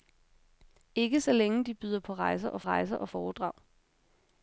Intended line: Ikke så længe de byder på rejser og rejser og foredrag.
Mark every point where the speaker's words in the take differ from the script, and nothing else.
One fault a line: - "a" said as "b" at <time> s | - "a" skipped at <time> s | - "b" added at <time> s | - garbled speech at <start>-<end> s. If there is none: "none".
none